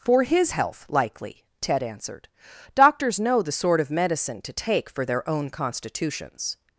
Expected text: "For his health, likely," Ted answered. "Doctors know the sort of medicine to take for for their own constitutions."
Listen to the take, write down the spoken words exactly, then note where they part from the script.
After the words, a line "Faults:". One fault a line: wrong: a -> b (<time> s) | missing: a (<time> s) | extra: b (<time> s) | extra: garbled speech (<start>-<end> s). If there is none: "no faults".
"For his health, likely," Ted answered. "Doctors know the sort of medicine to take for their own constitutions."
Faults:
missing: for (5.1 s)